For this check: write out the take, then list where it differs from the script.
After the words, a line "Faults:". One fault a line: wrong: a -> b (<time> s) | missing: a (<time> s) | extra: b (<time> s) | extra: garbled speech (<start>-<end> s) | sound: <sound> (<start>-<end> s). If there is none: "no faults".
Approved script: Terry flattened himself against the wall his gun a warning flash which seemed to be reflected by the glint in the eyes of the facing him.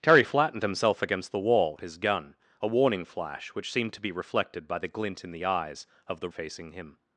Terry flattened himself against the wall his gun a warning flash which seemed to be reflected by the glint in the eyes of the facing him.
Faults:
no faults